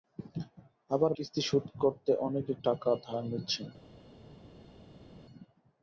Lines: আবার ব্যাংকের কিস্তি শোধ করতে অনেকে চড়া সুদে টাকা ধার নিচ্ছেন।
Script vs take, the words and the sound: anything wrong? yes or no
yes